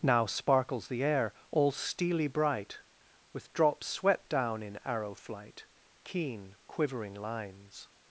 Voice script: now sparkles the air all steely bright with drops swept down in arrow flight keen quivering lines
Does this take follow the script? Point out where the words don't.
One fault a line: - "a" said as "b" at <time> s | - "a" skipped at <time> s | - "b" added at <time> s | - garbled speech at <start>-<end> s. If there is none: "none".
none